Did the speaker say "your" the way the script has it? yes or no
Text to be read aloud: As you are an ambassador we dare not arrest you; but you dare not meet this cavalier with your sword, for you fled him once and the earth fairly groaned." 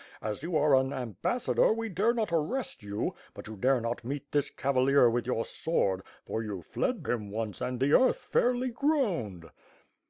yes